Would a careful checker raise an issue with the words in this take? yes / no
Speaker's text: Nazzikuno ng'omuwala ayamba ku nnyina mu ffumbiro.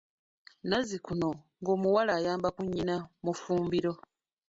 no